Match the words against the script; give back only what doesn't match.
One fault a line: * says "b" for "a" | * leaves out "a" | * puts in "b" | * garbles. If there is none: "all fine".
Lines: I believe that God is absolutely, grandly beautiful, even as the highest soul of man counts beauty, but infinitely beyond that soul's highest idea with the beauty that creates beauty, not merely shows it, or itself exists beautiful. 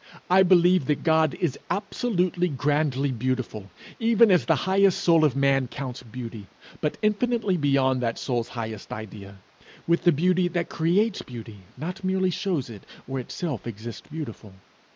all fine